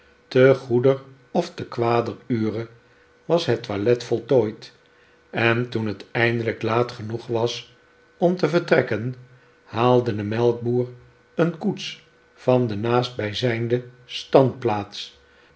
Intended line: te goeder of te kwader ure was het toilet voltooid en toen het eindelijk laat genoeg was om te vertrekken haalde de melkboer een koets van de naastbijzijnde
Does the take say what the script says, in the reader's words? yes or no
yes